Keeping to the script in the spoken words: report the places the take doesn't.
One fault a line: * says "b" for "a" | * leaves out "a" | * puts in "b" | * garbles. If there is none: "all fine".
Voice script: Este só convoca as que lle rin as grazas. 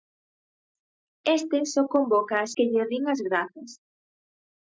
all fine